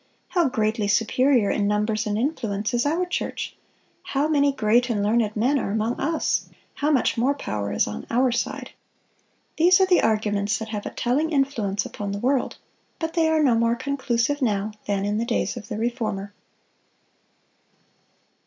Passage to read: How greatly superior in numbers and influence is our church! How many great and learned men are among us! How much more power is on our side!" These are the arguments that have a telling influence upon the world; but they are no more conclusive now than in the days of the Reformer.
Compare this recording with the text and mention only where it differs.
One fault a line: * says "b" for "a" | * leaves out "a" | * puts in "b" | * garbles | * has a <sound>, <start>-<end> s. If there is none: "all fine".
all fine